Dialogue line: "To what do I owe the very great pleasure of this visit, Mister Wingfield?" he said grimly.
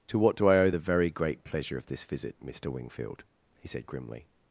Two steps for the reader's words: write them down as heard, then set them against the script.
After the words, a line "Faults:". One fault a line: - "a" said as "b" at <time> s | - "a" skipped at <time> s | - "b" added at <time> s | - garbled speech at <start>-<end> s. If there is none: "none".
"To what do I owe the very great pleasure of this visit, Mister Wingfield?" he said grimly.
Faults:
none